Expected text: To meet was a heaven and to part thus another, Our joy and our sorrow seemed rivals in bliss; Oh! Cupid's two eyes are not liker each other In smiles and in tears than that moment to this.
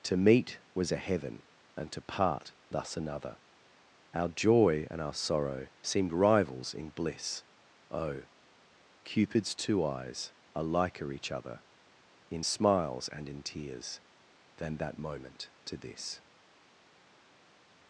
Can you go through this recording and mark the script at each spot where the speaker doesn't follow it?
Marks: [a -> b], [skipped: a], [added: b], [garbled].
To meet was a heaven and to part thus another, Our joy and our sorrow seemed rivals in bliss; Oh! Cupid's two eyes are [skipped: not] liker each other In smiles and in tears than that moment to this.